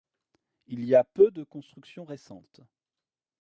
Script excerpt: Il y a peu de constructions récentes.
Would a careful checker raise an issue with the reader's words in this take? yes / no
no